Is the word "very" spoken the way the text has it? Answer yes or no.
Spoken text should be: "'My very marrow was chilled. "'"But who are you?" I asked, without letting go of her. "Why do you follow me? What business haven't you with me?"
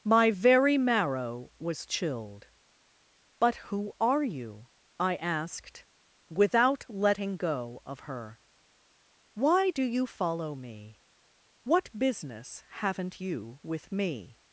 yes